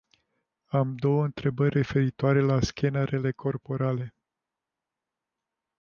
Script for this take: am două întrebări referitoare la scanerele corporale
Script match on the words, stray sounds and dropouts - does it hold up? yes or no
yes